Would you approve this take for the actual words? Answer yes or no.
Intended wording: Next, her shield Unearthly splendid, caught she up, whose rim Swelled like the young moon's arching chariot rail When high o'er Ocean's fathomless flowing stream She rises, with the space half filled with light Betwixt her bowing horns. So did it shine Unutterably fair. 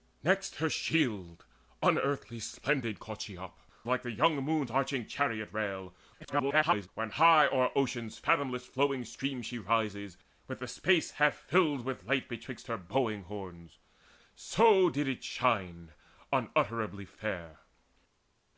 no